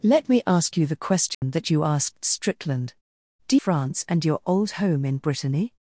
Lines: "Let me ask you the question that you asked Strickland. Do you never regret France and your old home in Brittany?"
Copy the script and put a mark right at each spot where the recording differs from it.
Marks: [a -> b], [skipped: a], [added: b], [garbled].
"Let me ask you the question that you asked Strickland. Do [skipped: you never regret] France and your old home in Brittany?"